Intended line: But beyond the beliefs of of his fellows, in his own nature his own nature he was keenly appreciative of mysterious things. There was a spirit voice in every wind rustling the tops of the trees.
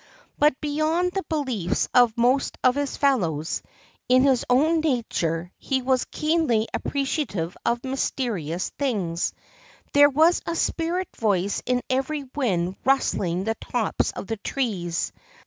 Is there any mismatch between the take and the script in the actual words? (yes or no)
yes